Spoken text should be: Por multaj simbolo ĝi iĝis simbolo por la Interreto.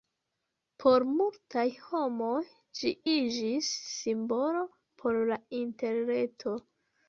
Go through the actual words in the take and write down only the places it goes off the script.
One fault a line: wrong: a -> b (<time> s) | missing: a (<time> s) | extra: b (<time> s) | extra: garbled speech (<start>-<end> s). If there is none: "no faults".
wrong: simbolo -> homoj (1.9 s)